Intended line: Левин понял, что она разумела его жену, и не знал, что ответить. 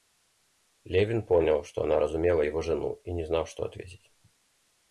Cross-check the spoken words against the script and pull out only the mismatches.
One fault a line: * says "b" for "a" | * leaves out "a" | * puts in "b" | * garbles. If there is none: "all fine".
all fine